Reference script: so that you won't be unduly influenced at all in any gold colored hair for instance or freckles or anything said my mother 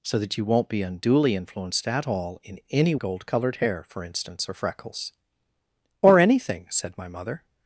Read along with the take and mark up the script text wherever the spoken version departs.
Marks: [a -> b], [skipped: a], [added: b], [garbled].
so that you won't be unduly influenced at all in any gold colored hair for instance or freckles or anything said my mother